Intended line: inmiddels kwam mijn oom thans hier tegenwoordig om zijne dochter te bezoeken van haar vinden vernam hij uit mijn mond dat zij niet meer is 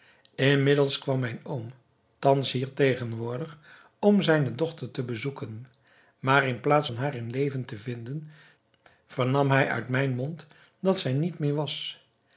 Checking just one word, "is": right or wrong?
wrong